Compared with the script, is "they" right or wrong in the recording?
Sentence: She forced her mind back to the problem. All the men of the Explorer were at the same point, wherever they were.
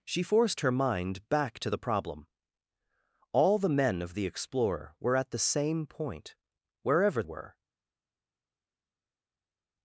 wrong